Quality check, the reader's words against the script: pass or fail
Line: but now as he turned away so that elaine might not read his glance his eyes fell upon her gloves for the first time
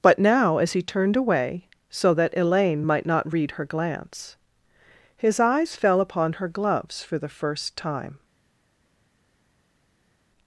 fail